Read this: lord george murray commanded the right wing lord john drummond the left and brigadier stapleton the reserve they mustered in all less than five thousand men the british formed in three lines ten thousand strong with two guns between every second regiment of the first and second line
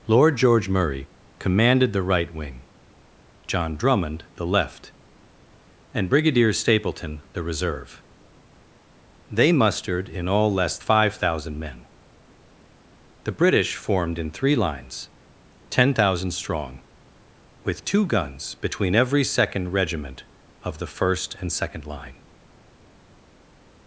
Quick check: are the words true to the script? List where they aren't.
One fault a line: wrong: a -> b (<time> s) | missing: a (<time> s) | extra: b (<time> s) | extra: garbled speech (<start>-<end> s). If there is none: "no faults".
missing: lord (2.6 s)
missing: than (10.8 s)